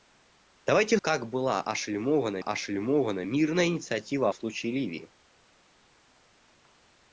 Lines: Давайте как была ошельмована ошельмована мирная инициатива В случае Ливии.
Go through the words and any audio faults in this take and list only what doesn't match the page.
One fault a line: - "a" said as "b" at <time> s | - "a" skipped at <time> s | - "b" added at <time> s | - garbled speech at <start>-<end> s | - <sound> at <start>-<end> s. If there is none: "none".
none